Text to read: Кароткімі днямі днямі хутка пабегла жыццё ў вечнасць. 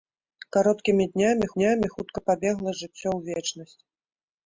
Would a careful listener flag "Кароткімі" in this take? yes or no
no